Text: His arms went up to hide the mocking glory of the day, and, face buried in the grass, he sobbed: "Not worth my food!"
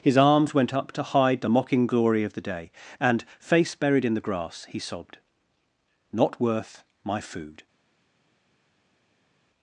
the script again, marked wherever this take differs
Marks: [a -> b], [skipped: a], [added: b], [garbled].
His arms went up to hide the mocking glory of the day, and, face buried in the grass, he sobbed: "Not worth my food!"